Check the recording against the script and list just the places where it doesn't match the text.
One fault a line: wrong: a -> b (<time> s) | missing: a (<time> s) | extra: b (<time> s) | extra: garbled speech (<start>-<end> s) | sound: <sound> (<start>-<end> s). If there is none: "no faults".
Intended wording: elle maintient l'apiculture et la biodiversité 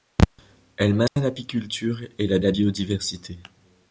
sound: dropout (1.1-1.2 s)
extra: la (2.4 s)